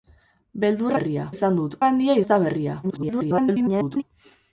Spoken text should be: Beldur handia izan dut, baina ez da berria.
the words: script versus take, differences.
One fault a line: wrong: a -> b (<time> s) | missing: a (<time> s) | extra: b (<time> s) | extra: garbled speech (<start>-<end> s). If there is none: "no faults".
wrong: handia -> berria (1.0 s)
wrong: baina -> handia (1.9 s)
extra: garbled speech (2.8-4.0 s)